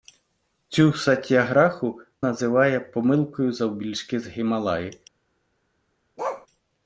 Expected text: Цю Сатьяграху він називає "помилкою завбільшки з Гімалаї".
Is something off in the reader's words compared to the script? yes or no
yes